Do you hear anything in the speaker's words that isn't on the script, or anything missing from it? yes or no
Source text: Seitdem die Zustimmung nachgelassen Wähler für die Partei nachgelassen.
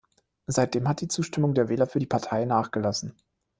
yes